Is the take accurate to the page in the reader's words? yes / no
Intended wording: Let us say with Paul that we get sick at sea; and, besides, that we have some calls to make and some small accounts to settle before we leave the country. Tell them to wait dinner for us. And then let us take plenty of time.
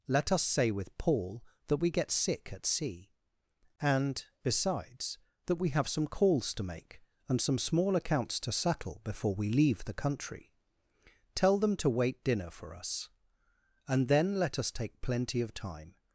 yes